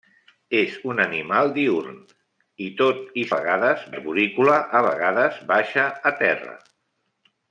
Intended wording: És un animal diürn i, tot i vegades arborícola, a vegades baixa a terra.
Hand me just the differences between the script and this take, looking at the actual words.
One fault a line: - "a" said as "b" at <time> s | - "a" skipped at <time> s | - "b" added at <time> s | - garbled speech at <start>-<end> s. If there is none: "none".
none